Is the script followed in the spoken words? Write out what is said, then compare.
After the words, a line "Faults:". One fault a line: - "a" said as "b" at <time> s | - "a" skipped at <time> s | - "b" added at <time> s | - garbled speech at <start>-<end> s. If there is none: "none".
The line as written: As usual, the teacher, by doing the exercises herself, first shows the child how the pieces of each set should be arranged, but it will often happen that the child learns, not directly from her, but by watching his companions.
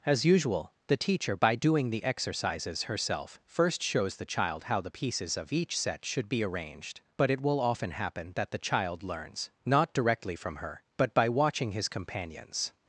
As usual, the teacher, by doing the exercises herself, first shows the child how the pieces of each set should be arranged, but it will often happen that the child learns, not directly from her, but by watching his companions.
Faults:
none